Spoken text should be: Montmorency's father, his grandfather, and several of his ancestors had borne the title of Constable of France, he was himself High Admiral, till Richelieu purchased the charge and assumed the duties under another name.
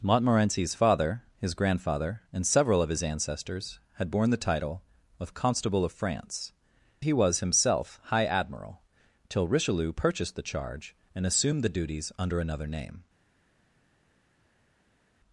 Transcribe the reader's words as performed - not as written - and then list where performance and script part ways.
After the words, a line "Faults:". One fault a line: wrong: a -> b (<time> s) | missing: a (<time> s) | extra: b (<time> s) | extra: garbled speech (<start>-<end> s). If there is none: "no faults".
Montmorency's father, his grandfather, and several of his ancestors had borne the title of Constable of France, he was himself High Admiral, till Richelieu purchased the charge and assumed the duties under another name.
Faults:
no faults